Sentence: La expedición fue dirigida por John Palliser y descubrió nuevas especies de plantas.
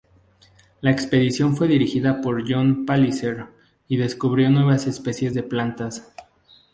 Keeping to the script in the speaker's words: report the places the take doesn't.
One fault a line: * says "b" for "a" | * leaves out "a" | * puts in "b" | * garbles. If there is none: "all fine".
all fine